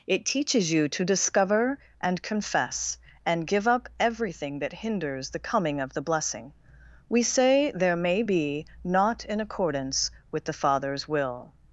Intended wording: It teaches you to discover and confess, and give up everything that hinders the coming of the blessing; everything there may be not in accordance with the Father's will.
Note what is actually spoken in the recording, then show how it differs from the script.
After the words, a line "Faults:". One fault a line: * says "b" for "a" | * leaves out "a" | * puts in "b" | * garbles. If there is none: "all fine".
It teaches you to discover and confess, and give up everything that hinders the coming of the blessing; we say there may be not in accordance with the Father's will.
Faults:
* says "we say" for "everything"